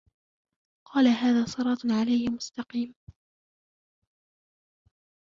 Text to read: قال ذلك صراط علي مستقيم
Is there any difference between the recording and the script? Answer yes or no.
yes